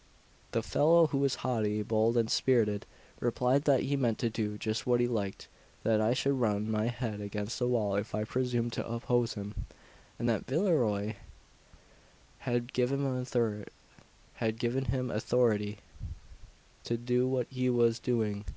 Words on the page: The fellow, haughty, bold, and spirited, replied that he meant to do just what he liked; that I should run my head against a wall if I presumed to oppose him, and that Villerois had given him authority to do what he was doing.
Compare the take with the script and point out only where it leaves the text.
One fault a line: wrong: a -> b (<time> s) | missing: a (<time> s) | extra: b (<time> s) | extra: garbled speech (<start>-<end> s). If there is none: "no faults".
extra: who was (1.1 s)